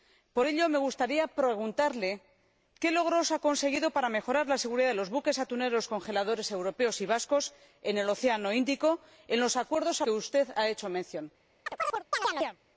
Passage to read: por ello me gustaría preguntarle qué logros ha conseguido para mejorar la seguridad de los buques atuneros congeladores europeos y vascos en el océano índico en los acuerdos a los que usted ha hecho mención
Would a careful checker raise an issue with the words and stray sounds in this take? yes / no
yes